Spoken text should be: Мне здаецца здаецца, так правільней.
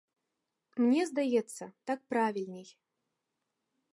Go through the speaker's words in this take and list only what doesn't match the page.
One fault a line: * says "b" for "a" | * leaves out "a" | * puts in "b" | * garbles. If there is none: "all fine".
* leaves out "здаецца"